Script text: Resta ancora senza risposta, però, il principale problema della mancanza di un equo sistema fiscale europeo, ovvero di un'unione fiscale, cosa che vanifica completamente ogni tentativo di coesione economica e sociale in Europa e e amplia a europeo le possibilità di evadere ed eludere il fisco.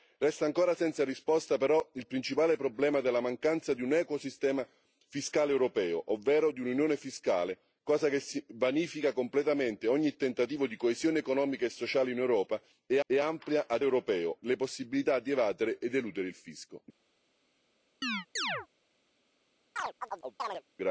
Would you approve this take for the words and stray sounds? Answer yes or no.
no